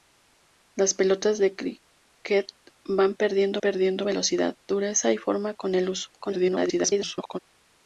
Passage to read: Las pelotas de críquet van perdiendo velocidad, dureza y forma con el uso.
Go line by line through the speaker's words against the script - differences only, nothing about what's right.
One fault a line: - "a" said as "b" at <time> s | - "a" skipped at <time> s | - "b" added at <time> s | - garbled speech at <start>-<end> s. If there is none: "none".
- "perdiendo" added at 3.6 s
- garbled speech at 6.2-7.4 s